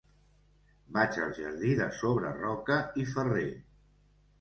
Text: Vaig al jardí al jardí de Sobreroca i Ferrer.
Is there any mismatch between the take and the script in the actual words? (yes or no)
yes